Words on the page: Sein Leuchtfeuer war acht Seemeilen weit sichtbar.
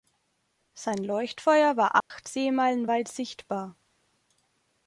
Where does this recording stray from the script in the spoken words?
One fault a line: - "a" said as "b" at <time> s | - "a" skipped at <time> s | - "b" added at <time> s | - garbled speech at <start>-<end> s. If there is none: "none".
none